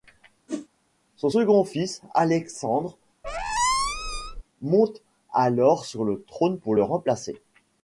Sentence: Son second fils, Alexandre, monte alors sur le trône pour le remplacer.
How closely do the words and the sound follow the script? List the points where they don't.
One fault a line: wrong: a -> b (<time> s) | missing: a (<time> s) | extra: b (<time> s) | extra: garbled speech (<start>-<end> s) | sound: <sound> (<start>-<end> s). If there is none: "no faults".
sound: whoosh (0.5-0.7 s)
sound: squeak (3.2-4.4 s)